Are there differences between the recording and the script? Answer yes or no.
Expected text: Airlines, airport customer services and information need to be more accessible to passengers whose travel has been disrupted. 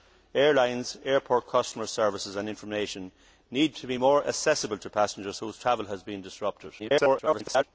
yes